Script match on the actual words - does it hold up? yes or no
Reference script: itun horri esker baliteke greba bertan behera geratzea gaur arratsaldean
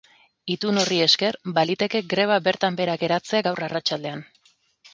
yes